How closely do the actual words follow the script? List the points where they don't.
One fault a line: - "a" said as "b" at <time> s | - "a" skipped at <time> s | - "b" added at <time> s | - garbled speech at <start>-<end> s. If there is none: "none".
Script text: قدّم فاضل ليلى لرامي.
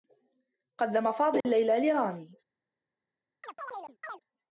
none